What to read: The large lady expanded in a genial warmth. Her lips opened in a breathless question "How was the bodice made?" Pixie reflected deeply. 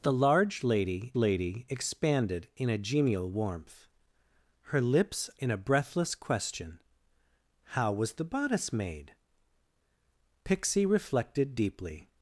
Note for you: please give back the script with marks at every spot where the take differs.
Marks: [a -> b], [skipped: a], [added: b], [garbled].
The large lady [added: lady] expanded in a genial warmth. Her lips [skipped: opened] in a breathless question "How was the bodice made?" Pixie reflected deeply.